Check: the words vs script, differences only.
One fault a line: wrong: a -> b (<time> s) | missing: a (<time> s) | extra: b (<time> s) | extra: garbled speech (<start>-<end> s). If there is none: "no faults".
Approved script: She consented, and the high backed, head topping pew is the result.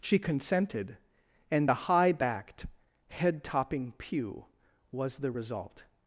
wrong: is -> was (4.9 s)